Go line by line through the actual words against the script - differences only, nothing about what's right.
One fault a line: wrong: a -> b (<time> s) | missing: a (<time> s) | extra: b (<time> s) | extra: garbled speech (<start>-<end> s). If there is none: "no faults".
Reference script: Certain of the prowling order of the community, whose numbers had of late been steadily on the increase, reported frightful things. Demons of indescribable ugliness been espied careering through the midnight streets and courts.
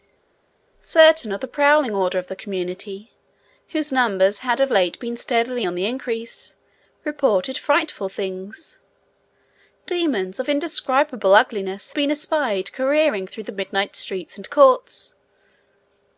no faults